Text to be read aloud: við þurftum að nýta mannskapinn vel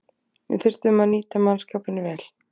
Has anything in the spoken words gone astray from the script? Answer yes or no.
no